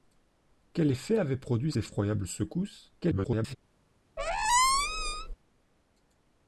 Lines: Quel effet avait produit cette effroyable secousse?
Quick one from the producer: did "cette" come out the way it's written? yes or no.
no